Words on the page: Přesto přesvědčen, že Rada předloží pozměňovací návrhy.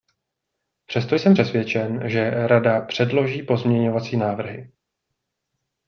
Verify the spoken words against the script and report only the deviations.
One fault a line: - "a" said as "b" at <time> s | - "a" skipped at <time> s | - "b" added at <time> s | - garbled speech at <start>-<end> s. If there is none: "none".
- "jsem" added at 1.1 s